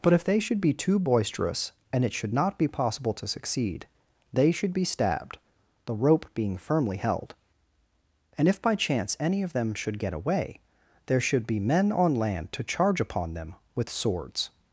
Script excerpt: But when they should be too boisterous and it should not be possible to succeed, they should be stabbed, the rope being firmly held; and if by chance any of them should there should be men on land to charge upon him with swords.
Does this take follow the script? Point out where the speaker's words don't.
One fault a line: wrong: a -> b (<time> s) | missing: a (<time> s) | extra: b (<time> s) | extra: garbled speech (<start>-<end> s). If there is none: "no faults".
wrong: when -> if (0.1 s)
extra: get away (10.0 s)
wrong: him -> them (13.3 s)